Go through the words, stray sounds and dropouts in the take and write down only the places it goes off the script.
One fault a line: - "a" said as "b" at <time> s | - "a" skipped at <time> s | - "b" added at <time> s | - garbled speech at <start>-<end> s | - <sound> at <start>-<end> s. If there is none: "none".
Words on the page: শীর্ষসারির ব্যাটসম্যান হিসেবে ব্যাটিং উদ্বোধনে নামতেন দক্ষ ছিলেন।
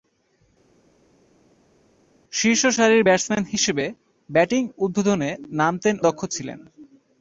none